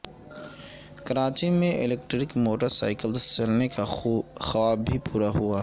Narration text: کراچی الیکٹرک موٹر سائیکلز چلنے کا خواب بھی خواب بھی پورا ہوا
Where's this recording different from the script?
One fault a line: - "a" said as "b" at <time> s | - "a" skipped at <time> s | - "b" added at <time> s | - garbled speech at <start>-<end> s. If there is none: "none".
- "میں" added at 1.5 s
- "خواب بھی" skipped at 5.0 s